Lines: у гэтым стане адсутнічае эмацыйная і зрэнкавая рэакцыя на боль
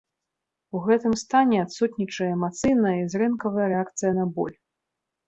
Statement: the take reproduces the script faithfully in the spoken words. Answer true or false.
true